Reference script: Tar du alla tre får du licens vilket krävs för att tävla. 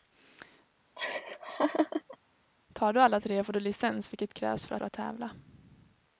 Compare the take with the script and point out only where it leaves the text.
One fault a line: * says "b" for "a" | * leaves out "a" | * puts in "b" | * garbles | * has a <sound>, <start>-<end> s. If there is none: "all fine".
* has a laugh, 1.0-2.2 s
* puts in "för"